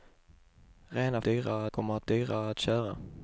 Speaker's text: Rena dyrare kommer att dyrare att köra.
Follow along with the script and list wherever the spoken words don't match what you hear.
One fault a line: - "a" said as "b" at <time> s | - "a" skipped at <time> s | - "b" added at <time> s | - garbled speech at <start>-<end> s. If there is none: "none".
none